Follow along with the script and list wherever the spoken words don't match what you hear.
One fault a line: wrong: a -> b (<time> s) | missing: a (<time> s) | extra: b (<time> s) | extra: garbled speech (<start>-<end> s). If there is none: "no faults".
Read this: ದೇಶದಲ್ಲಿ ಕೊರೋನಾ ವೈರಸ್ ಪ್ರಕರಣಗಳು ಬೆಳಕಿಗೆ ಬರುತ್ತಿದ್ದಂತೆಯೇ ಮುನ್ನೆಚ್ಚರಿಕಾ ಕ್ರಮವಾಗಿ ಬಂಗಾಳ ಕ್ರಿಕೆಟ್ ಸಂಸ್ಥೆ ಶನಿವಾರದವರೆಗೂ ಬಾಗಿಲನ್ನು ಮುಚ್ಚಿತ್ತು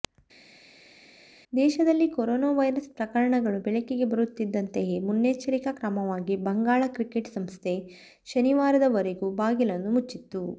no faults